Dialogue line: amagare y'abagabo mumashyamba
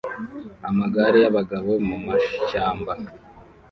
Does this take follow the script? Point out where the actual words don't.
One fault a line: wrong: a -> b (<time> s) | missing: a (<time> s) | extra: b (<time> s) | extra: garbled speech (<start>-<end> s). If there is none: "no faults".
no faults